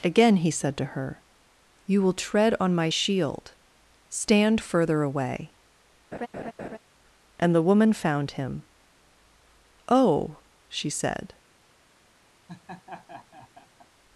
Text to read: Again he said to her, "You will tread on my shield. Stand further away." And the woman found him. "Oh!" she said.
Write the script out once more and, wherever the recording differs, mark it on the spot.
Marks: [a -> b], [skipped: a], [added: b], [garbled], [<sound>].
Again he said to her, "You will tread on my shield. Stand further away." [laugh] And the woman found him. "Oh!" she said. [laugh]